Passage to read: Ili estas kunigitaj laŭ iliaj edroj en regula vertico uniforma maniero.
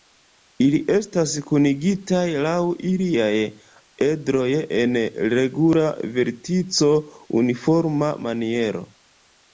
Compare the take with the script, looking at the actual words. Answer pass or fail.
pass